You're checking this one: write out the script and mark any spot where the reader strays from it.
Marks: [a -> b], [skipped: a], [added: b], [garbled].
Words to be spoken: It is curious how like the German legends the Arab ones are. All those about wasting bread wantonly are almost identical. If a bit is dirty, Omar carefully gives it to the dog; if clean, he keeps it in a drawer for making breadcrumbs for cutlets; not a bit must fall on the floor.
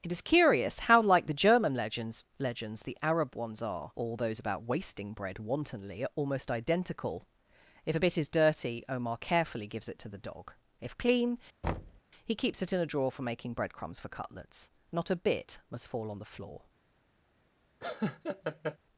It is curious how like the German legends [added: legends] the Arab ones are. All those about wasting bread wantonly are almost identical. If a bit is dirty, Omar carefully gives it to the dog; if clean, he keeps it in a drawer for making breadcrumbs for cutlets; not a bit must fall on the floor.